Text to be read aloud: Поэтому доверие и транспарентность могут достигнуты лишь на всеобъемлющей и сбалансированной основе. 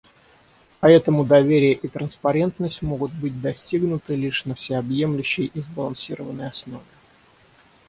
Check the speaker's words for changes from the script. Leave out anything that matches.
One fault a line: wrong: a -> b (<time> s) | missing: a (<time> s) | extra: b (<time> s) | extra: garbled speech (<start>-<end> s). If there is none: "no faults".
extra: быть (3.1 s)